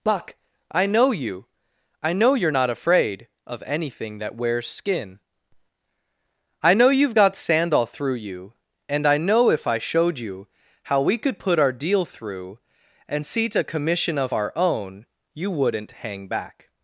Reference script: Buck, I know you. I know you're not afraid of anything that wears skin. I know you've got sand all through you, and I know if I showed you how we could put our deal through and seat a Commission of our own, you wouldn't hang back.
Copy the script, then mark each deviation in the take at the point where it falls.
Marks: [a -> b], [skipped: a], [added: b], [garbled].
Buck, I know you. I know you're not afraid of anything that wears skin. I know you've got sand all through you, and I know if I showed you how we could put our deal through and seat a Commission of our own, you wouldn't hang back.